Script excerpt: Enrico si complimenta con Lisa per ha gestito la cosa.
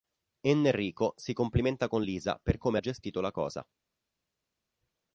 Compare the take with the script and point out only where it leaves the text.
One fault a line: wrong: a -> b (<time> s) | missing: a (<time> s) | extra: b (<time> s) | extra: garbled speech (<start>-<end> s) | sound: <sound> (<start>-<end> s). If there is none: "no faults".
extra: come (2.6 s)